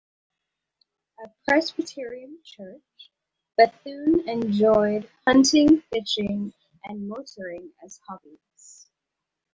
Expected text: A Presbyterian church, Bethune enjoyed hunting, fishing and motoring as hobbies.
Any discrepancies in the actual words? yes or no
no